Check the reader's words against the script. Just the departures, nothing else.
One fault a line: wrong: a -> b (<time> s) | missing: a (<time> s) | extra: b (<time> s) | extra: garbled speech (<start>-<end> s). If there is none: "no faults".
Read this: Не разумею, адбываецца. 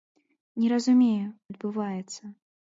no faults